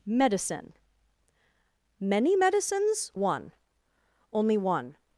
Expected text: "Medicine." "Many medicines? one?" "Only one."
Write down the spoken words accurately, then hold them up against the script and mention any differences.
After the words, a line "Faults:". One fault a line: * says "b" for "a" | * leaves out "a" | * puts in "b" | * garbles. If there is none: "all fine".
"Medicine." "Many medicines? one?" "Only one."
Faults:
all fine